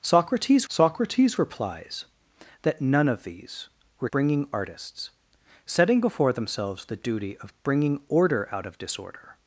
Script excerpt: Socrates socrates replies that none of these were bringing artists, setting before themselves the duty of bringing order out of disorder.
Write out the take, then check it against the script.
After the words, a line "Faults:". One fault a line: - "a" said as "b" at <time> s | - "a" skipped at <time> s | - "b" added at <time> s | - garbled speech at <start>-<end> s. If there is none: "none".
Socrates socrates replies that none of these were bringing artists, setting before themselves the duty of bringing order out of disorder.
Faults:
none